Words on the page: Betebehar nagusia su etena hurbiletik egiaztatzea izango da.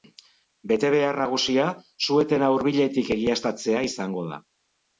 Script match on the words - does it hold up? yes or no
yes